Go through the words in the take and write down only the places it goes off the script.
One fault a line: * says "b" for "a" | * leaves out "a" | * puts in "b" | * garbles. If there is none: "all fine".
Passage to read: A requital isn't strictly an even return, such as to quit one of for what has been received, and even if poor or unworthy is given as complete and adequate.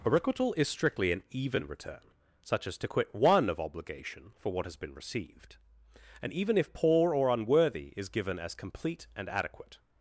* says "is" for "isn't"
* puts in "obligation"